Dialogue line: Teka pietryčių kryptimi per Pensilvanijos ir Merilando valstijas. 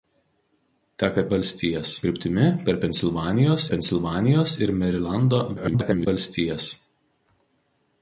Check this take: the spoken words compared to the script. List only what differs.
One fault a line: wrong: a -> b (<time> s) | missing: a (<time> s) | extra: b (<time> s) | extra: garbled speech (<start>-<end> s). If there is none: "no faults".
wrong: pietryčių -> valstijas (1.4 s)
extra: Pensilvanijos (3.7 s)
extra: garbled speech (5.6-6.1 s)